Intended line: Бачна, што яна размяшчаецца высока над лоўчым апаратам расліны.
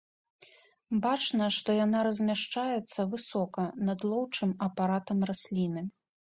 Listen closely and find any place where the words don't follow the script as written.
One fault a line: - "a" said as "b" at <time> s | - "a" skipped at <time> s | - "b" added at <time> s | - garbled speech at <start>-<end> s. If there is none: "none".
none